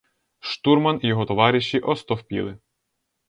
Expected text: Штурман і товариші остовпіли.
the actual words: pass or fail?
fail